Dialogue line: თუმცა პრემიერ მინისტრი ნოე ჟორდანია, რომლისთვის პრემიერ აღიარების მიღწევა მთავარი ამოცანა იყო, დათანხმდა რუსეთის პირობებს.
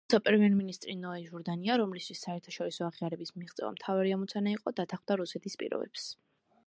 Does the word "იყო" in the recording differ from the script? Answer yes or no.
no